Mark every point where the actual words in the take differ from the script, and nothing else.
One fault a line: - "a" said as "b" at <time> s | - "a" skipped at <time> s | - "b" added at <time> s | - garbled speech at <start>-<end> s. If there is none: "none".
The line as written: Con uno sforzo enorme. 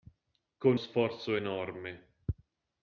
- "uno" skipped at 0.8 s